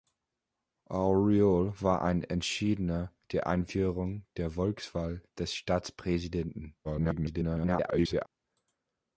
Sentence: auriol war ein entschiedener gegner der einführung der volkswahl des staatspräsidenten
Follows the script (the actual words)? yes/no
no